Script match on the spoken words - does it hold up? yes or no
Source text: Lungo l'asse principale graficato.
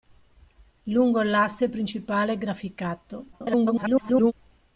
no